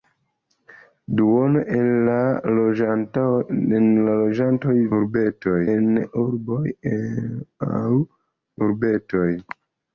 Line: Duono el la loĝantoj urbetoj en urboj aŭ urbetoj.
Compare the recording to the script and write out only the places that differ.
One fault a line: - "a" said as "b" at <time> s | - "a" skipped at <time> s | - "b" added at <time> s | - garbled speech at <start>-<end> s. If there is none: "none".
none